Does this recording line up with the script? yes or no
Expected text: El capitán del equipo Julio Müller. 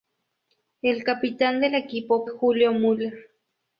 yes